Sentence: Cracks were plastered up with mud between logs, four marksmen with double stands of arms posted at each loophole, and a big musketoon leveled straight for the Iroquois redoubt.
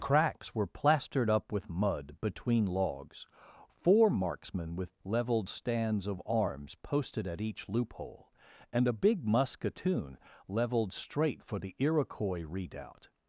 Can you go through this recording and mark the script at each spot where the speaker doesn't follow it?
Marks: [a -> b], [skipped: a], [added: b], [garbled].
Cracks were plastered up with mud between logs, four marksmen with [double -> leveled] stands of arms posted at each loophole, and a big musketoon leveled straight for the Iroquois redoubt.